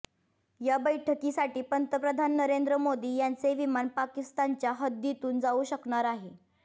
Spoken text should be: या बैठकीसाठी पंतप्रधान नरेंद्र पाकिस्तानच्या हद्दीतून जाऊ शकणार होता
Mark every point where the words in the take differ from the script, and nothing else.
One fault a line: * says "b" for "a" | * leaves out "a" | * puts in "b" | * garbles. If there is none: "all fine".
* puts in "मोदी यांचे विमान"
* says "आहे" for "होता"